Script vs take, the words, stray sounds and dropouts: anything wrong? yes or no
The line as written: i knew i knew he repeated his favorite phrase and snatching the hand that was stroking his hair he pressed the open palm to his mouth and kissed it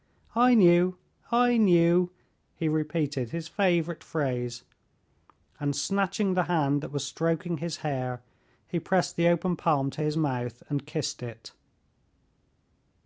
no